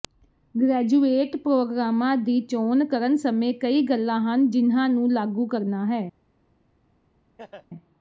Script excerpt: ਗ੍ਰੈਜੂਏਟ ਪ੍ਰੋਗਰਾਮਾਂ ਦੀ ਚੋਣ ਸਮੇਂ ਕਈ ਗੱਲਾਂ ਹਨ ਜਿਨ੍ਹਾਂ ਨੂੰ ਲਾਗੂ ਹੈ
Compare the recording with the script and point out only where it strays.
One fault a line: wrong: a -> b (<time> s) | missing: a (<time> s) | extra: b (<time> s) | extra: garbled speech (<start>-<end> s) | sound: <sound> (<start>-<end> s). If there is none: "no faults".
extra: ਕਰਨ (2.9 s)
extra: ਕਰਨਾ (5.5 s)
sound: laugh (7.4-7.7 s)